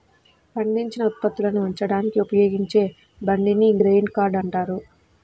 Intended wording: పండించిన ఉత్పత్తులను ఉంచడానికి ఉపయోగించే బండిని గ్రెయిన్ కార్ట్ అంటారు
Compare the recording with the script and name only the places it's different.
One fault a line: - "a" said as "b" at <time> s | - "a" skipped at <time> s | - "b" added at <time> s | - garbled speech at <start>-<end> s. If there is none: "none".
none